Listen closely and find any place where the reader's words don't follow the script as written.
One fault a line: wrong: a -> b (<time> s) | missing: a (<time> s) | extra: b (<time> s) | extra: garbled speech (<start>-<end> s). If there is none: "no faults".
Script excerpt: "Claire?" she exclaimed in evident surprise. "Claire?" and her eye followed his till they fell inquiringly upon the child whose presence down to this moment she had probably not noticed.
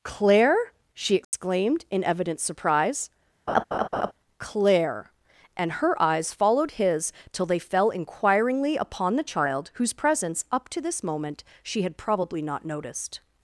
wrong: eye -> eyes (6.0 s)
wrong: down -> up (10.5 s)